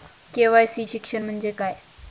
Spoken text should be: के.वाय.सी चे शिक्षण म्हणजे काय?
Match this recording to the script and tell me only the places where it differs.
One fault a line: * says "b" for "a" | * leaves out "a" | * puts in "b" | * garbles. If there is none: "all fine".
* leaves out "चे"